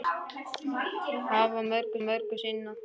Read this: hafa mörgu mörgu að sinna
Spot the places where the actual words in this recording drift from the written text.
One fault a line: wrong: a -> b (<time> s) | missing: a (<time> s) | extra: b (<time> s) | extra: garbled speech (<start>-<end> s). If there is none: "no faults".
no faults